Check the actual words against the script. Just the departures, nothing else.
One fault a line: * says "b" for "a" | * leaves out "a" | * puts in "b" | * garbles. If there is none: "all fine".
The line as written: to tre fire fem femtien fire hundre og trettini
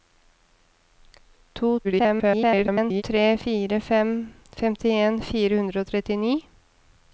* garbles